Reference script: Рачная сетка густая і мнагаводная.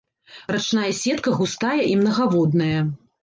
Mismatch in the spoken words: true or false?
false